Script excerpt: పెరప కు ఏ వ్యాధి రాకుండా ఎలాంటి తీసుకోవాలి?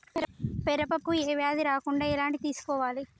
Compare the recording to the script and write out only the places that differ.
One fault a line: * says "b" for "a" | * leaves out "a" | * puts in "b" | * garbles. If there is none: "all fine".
all fine